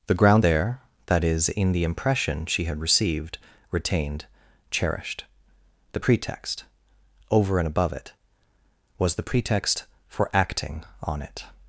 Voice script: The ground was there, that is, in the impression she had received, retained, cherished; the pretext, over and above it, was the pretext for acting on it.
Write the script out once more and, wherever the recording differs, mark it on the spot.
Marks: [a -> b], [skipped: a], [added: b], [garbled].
The ground [skipped: was] there, that is, in the impression she had received, retained, cherished; the pretext, over and above it, was the pretext for acting on it.